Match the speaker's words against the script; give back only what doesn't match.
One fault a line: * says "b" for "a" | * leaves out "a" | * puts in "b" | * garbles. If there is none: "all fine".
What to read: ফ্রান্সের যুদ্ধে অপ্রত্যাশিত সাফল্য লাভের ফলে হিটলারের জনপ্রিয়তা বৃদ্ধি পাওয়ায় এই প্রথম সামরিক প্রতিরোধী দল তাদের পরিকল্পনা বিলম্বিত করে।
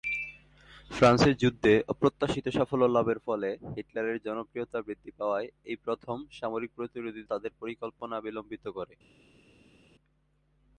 * leaves out "দল"